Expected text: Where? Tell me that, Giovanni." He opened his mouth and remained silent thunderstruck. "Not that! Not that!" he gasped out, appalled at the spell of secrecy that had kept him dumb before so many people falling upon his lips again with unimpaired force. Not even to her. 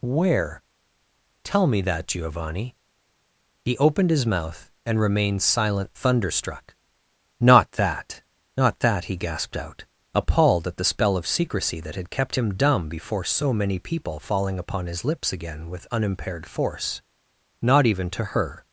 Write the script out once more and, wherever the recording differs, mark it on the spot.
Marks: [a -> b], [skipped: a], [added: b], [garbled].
Where? Tell me that, Giovanni." He opened his mouth and remained silent thunderstruck. "Not that! Not that!" he gasped out, appalled at the spell of secrecy that had kept him dumb before so many people falling upon his lips again with unimpaired force. Not even to her.